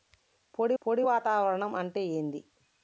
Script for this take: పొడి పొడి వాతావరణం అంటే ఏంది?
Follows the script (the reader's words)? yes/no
yes